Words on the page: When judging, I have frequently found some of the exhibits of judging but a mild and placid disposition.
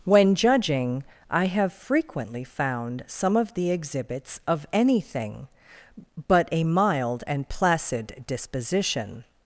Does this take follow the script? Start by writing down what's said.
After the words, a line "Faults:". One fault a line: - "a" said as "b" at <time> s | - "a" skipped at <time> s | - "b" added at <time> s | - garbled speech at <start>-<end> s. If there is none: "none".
When judging, I have frequently found some of the exhibits of anything but a mild and placid disposition.
Faults:
- "judging" said as "anything" at 4.7 s